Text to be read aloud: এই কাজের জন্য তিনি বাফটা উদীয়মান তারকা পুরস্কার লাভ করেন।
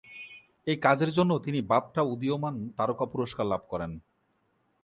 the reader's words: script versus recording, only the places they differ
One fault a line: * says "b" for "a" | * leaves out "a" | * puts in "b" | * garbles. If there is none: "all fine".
all fine